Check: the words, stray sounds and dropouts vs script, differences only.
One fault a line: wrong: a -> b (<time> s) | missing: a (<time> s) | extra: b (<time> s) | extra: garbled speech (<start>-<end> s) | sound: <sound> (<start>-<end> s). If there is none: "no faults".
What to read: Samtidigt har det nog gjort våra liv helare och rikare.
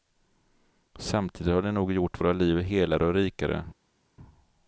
no faults